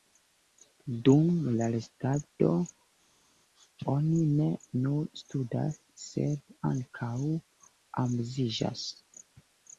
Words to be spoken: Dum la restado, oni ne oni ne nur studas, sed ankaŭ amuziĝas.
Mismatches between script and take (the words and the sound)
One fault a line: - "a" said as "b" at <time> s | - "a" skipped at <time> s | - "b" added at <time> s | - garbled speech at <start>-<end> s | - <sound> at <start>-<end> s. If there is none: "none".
- "oni ne" skipped at 4.5 s